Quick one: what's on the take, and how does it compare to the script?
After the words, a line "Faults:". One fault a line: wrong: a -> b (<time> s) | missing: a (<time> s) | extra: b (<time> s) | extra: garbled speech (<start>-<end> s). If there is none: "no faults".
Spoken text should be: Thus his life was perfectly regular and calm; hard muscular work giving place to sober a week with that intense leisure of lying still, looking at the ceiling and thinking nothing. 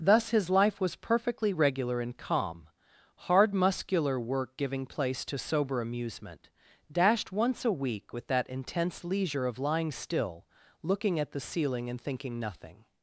Thus his life was perfectly regular and calm; hard muscular work giving place to sober amusement, dashed once a week with that intense leisure of lying still, looking at the ceiling and thinking nothing.
Faults:
extra: amusement dashed once (5.8 s)